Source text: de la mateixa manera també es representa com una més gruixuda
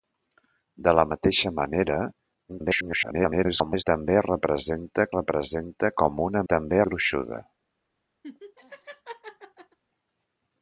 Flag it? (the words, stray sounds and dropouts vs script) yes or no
yes